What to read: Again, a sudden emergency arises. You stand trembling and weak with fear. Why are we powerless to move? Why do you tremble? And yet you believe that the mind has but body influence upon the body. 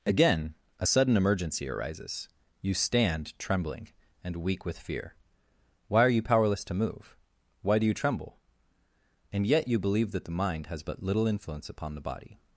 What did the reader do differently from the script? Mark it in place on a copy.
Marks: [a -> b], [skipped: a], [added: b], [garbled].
Again, a sudden emergency arises. You stand trembling and weak with fear. Why are [we -> you] powerless to move? Why do you tremble? And yet you believe that the mind has but [body -> little] influence upon the body.